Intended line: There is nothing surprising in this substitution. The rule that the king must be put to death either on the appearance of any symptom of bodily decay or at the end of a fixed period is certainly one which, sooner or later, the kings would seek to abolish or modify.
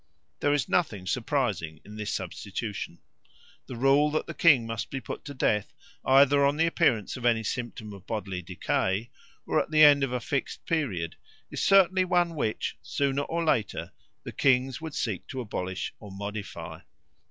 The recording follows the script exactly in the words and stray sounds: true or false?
true